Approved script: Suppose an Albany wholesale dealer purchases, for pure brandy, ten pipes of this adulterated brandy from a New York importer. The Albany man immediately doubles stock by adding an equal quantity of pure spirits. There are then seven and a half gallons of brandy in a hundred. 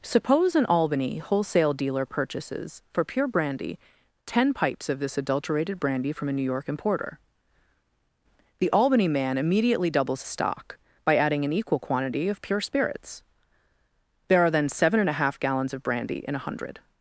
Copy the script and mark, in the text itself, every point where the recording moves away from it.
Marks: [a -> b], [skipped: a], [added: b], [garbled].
Suppose an Albany wholesale dealer purchases, for pure brandy, ten pipes of this adulterated brandy from a New York importer. The Albany man immediately doubles stock by adding an equal quantity of pure spirits. There are then seven and a half gallons of brandy in a hundred.